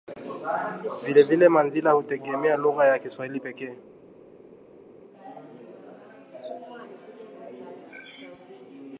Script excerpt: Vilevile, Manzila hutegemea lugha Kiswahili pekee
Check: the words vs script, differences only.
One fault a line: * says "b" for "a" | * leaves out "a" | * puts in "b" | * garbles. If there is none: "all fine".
* puts in "ya"